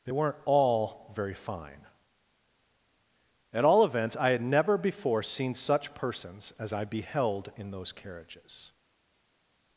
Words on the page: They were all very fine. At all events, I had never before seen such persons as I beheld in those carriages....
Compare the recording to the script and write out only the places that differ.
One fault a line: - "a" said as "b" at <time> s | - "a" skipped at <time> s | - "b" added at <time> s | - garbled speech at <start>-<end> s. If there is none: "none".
- "were" said as "weren't" at 0.1 s